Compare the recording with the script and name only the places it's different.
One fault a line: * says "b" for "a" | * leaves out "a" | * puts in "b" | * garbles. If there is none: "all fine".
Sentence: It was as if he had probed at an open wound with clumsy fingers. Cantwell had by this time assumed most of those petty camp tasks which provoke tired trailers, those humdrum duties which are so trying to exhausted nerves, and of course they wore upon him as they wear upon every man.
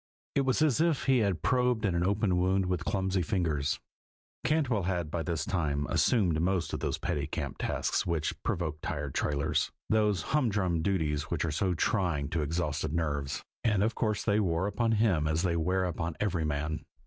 all fine